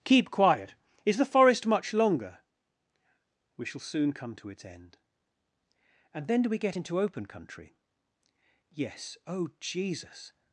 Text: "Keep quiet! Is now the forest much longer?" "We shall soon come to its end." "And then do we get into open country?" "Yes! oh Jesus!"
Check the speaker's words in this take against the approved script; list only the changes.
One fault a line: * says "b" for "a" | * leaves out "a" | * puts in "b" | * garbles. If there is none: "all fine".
* leaves out "now"